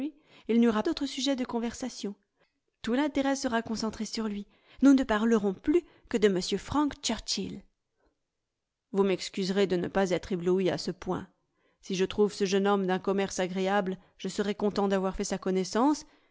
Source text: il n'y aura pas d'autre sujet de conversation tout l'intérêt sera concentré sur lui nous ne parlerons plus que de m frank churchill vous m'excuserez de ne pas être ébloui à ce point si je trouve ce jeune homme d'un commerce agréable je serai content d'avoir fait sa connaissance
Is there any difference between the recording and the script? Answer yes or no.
yes